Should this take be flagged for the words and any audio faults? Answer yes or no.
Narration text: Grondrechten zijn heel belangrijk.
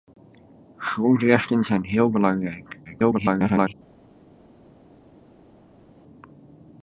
yes